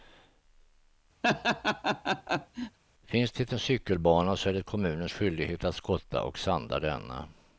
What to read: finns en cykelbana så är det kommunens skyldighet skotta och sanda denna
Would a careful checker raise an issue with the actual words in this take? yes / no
yes